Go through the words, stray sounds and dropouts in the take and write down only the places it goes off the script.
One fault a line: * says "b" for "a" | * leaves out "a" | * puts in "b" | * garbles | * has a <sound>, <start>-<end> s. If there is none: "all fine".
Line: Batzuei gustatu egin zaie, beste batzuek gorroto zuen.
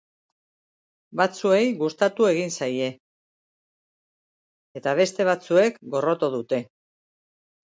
* puts in "eta"
* says "dute" for "zuen"